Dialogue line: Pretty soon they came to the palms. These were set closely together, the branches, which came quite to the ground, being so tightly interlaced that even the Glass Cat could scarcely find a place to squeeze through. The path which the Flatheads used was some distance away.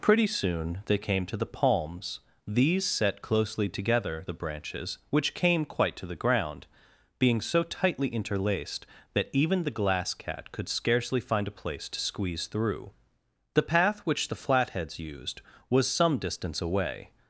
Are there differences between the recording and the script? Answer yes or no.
yes